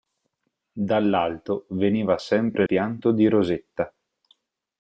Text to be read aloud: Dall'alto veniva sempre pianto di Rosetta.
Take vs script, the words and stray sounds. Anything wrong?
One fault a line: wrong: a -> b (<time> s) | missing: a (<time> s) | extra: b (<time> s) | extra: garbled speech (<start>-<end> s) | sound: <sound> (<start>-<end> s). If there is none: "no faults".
no faults